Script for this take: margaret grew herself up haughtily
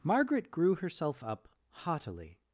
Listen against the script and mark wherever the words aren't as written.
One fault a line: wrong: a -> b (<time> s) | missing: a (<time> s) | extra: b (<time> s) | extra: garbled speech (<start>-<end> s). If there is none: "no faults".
no faults